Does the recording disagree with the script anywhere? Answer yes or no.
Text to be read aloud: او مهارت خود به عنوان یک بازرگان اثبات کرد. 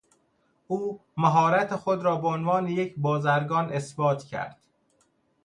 yes